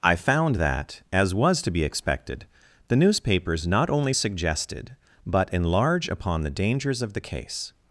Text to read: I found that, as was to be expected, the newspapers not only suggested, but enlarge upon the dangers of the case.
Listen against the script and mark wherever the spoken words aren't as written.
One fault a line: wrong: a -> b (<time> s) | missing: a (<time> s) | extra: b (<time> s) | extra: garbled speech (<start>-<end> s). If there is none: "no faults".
no faults